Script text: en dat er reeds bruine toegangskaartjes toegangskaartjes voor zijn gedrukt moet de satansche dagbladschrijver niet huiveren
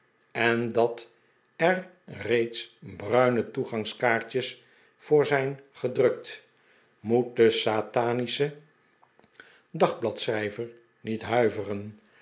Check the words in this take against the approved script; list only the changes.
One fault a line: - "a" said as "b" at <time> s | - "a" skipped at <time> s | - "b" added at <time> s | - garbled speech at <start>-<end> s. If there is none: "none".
- "toegangskaartjes" skipped at 4.6 s